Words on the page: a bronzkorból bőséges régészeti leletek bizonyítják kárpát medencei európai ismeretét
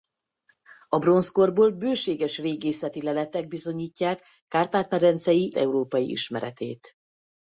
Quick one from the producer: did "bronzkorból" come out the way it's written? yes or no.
yes